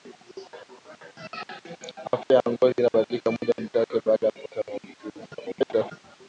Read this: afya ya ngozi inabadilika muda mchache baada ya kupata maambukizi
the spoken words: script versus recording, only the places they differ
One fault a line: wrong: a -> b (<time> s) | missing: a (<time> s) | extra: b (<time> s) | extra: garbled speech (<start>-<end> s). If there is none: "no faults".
extra: garbled speech (5.3-5.9 s)